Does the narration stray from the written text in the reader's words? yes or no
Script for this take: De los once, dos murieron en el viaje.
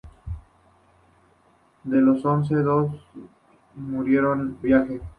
yes